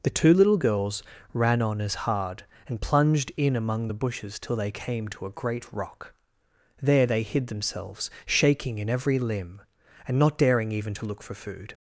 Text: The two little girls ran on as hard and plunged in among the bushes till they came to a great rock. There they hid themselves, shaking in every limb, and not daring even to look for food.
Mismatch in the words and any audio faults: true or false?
false